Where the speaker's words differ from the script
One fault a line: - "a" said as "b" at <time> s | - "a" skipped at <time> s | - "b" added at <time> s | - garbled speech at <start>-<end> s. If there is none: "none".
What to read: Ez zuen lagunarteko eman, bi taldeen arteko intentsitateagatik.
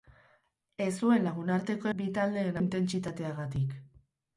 - "eman" skipped at 1.9 s
- "arteko" skipped at 2.6 s